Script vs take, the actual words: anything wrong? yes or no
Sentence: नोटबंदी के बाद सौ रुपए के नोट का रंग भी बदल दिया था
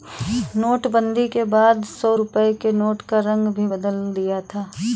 no